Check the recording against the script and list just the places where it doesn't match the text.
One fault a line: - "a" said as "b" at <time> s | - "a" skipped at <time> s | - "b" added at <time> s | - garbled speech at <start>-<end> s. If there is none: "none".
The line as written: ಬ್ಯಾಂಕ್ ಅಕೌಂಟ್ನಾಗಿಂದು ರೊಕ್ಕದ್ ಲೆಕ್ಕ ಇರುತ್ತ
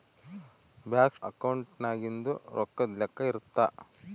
none